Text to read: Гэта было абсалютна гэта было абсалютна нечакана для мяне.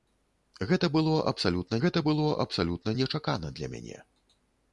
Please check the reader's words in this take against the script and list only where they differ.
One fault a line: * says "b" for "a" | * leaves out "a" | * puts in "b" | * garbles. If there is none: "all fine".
all fine